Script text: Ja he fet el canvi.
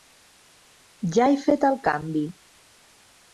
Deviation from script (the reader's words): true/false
false